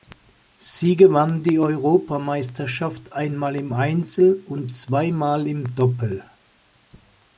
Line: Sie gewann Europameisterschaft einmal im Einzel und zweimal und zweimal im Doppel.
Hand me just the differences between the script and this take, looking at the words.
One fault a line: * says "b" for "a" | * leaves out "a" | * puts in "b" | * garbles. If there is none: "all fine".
* puts in "die"
* leaves out "und zweimal"